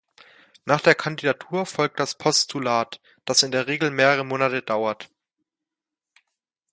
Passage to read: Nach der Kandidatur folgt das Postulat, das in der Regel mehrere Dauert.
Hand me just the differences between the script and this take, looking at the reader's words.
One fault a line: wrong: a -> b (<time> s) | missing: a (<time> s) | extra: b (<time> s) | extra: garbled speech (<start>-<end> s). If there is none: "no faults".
extra: Monate (4.2 s)